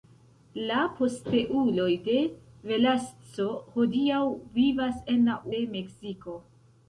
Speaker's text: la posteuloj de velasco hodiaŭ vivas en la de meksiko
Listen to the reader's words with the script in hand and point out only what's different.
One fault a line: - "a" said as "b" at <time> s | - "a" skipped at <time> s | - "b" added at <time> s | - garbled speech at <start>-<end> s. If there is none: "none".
none